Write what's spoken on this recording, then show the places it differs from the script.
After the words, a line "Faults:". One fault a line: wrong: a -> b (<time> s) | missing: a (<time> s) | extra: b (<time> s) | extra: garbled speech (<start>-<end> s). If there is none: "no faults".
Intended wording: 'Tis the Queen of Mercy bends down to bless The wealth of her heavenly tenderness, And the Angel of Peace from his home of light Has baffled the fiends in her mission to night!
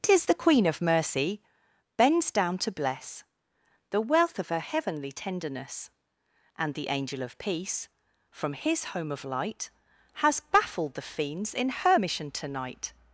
'Tis the Queen of Mercy bends down to bless The wealth of her heavenly tenderness, And the Angel of Peace from his home of light Has baffled the fiends in her mission to night!
Faults:
no faults